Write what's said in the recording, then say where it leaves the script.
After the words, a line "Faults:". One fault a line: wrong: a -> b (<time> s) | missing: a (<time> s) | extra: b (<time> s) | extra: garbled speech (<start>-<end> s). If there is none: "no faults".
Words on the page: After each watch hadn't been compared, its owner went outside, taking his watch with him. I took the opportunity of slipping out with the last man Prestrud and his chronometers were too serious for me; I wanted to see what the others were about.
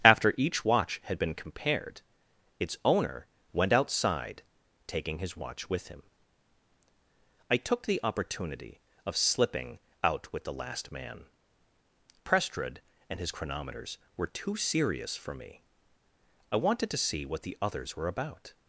After each watch had been compared, its owner went outside, taking his watch with him. I took the opportunity of slipping out with the last man Prestrud and his chronometers were too serious for me; I wanted to see what the others were about.
Faults:
wrong: hadn't -> had (1.0 s)